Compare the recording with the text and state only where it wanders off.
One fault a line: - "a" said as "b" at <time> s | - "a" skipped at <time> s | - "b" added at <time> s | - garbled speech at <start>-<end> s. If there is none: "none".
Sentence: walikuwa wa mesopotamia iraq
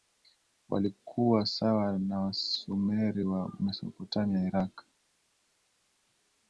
- "sawa na wasumeri" added at 1.4 s